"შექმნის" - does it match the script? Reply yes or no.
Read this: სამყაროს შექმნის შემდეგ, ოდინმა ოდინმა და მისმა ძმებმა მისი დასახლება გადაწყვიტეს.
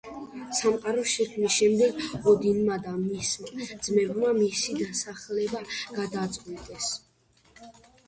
yes